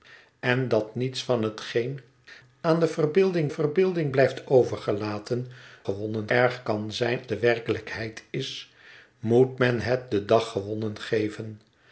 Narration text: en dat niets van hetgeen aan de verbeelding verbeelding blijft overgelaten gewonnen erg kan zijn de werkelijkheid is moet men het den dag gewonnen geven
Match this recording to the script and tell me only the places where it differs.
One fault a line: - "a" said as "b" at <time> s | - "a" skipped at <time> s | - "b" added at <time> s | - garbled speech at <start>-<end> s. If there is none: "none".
none